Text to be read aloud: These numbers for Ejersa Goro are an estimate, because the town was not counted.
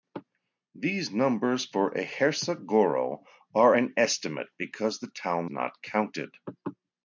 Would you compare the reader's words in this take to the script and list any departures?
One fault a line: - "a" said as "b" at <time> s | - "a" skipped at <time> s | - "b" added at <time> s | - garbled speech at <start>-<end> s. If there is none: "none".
- "was" skipped at 5.5 s